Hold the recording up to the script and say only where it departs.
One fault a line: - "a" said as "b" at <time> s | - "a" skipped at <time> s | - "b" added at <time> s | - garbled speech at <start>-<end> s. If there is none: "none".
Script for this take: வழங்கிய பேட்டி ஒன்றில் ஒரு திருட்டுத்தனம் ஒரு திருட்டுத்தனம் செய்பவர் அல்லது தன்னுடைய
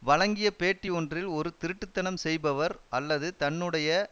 - "ஒரு திருட்டுத்தனம்" skipped at 2.2 s